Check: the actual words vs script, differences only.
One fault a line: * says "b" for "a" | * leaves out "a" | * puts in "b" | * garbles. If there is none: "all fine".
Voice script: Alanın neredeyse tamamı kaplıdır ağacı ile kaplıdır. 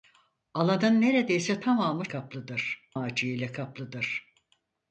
all fine